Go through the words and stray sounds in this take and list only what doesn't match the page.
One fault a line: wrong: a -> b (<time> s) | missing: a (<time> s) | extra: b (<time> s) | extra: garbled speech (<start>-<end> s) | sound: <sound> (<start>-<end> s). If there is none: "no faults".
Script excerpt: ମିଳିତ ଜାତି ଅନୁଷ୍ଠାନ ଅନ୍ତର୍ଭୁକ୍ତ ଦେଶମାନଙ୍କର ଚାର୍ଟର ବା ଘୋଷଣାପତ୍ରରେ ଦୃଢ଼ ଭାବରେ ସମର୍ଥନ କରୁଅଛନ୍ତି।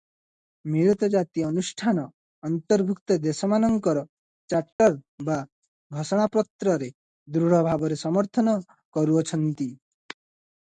sound: dropout (4.7-4.8 s)